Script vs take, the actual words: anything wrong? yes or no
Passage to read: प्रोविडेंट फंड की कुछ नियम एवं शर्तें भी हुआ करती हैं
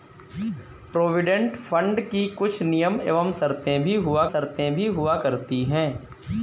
yes